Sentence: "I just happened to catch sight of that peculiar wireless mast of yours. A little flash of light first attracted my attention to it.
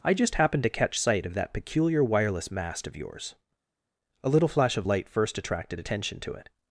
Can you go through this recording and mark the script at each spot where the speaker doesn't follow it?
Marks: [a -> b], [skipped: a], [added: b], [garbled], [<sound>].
"I just happened to catch sight of that peculiar wireless mast of yours. A little flash of light first attracted [skipped: my] attention to it.